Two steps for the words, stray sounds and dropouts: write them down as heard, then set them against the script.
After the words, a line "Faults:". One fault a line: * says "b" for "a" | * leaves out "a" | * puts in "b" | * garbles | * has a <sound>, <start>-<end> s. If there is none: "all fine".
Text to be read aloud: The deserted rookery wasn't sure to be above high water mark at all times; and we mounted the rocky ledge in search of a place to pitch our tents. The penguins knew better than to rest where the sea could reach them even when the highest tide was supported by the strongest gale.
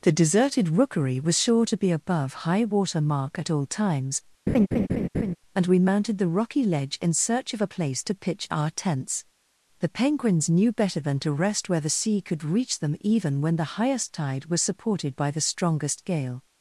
The deserted rookery was sure to be above high water mark at all times; and we mounted the rocky ledge in search of a place to pitch our tents. The penguins knew better than to rest where the sea could reach them even when the highest tide was supported by the strongest gale.
Faults:
* says "was" for "wasn't"
* has a laugh, 4.5-5.4 s